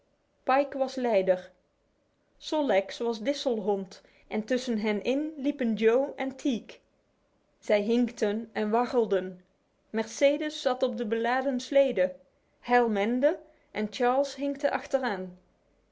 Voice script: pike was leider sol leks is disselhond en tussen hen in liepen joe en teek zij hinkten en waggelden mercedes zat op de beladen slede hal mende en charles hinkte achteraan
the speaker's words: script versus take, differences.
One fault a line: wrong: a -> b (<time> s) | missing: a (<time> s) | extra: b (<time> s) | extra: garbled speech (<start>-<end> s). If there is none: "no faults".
wrong: is -> was (3.0 s)